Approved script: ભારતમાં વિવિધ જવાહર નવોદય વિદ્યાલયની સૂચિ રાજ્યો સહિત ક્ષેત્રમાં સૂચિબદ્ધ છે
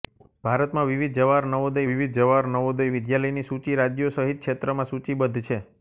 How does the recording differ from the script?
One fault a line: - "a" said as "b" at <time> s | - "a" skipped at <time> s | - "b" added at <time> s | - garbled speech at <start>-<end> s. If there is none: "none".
- "વિવિધ જવાહર નવોદય" added at 1.9 s